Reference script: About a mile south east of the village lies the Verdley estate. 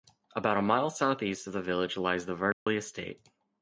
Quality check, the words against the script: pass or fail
pass